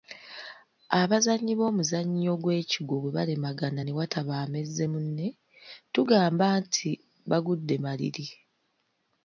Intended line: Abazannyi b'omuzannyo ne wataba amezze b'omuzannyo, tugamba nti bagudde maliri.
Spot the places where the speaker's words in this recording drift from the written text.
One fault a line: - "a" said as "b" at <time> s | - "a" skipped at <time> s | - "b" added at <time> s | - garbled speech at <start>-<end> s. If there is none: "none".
- "gw'ekigwo bwe balemagana" added at 2.4 s
- "b'omuzannyo" said as "munne" at 4.9 s